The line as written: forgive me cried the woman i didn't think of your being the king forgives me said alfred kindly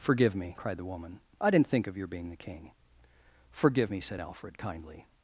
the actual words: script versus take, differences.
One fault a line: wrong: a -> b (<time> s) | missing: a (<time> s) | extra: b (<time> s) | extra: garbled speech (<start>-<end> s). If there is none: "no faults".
wrong: forgives -> forgive (3.5 s)